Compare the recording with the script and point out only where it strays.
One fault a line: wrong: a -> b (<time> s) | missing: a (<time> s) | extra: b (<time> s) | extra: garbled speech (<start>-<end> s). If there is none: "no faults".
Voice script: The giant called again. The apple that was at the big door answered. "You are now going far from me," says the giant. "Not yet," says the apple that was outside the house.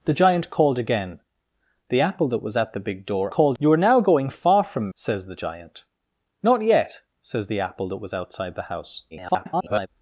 wrong: answered -> called (3.3 s)
missing: me (4.9 s)
extra: garbled speech (9.1-9.9 s)